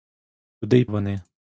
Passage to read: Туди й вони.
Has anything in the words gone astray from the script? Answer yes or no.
no